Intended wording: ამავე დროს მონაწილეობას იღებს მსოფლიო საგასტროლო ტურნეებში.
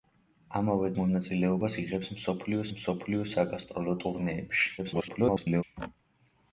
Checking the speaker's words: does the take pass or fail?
fail